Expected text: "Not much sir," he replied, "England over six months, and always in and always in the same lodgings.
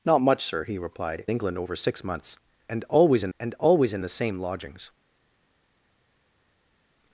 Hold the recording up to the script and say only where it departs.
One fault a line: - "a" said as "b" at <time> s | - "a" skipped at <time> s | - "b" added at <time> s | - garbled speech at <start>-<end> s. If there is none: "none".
none